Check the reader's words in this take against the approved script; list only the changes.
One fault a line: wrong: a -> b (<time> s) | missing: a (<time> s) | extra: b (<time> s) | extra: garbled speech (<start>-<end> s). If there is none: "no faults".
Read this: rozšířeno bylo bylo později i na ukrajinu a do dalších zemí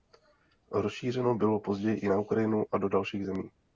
missing: bylo (1.6 s)